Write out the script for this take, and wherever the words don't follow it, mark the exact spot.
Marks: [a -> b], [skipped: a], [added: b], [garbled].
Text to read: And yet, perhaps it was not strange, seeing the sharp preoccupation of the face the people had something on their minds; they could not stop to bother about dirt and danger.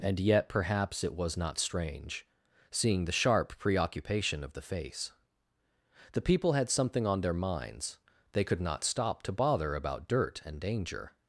And yet, perhaps it was not strange, seeing the sharp preoccupation of the face the people had something on their minds; they could not stop to bother about dirt and danger.